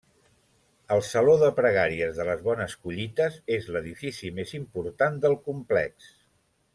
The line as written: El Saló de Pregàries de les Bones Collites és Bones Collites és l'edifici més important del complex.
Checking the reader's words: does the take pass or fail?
fail